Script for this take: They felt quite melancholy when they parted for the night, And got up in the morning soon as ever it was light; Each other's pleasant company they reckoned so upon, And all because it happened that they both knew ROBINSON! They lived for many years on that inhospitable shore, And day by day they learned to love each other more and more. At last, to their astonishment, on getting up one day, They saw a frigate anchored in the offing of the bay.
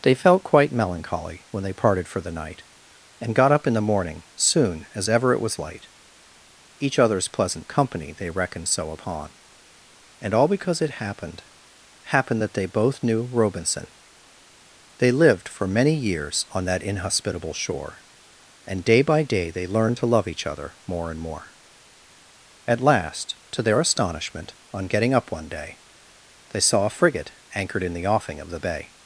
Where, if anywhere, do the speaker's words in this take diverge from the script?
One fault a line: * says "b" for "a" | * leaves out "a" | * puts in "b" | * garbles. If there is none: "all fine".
* puts in "happened"